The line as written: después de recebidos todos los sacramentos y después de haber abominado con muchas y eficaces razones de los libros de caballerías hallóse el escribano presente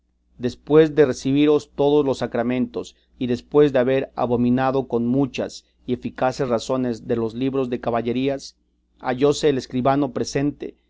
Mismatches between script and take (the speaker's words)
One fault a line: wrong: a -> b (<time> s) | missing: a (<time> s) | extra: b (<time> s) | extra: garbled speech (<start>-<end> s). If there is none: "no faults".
no faults